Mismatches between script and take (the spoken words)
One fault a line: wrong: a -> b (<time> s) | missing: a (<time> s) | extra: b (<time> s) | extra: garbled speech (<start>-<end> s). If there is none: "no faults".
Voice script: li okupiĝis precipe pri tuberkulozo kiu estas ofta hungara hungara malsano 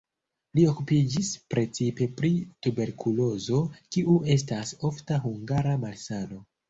missing: hungara (5.8 s)